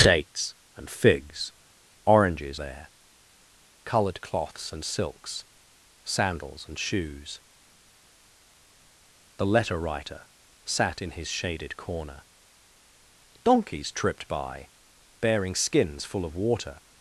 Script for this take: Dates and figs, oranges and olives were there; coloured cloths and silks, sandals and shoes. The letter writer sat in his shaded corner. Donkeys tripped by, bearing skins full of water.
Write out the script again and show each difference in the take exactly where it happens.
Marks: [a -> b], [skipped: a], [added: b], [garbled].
Dates and figs, oranges [skipped: and olives were] there; coloured cloths and silks, sandals and shoes. The letter writer sat in his shaded corner. Donkeys tripped by, bearing skins full of water.